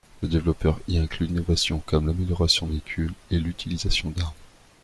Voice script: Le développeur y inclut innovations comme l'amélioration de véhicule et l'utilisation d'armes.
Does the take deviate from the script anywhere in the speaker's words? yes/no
no